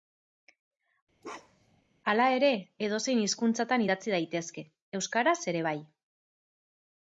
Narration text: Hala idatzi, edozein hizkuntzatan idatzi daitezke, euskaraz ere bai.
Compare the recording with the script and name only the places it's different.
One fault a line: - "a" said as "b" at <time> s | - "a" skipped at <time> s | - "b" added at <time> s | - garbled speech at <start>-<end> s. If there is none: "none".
- "idatzi" said as "ere" at 2.4 s